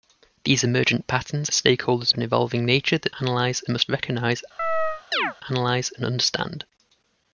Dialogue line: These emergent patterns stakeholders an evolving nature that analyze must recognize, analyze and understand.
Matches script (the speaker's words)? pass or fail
pass